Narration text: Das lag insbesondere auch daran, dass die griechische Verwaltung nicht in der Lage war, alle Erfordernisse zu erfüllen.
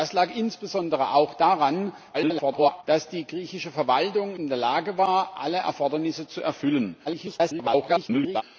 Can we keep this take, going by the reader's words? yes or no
no